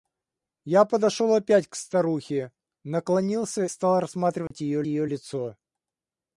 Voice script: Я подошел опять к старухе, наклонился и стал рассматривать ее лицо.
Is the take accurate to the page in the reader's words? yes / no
no